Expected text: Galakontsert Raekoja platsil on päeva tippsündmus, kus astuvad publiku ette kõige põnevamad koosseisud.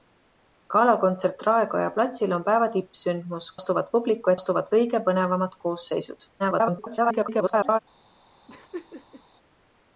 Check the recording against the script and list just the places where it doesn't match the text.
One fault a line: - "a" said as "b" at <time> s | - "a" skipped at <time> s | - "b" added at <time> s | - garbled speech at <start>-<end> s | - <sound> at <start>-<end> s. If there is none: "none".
- "kus" skipped at 3.5 s
- "ette" said as "astuvad" at 4.4 s
- garbled speech at 6.4-7.8 s
- laugh at 8.5-9.2 s